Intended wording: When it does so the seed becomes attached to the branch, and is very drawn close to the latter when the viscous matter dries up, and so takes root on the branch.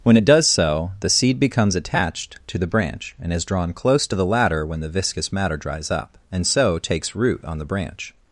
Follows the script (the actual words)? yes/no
no